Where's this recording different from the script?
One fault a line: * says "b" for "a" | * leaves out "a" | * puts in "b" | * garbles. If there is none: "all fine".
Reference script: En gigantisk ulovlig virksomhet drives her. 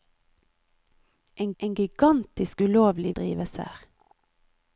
* puts in "en"
* leaves out "virksomhet"